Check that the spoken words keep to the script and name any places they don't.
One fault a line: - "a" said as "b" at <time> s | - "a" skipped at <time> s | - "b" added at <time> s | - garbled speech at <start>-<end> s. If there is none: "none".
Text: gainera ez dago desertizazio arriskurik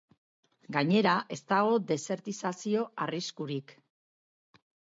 none